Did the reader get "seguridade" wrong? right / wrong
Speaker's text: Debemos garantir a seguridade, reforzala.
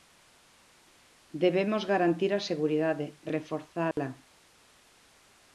right